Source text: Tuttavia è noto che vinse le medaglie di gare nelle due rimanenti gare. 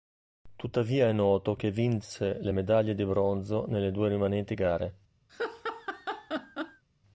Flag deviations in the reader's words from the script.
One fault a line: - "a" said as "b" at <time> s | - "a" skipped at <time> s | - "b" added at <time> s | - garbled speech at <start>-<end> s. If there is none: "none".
- "gare" said as "bronzo" at 3.0 s